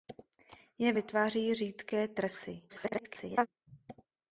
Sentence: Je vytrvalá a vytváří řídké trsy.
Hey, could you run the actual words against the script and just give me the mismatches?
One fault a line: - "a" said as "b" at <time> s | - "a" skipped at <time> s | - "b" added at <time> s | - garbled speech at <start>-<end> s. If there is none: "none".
- "vytrvalá a" skipped at 0.9 s
- garbled speech at 2.7-3.5 s